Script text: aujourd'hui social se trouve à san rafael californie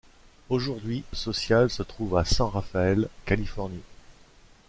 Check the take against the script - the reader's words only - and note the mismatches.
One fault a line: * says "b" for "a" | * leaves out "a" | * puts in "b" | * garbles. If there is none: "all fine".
all fine